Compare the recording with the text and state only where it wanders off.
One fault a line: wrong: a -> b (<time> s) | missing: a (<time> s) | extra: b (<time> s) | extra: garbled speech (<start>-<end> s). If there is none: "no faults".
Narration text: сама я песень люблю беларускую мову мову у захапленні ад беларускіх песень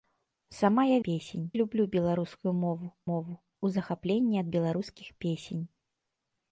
no faults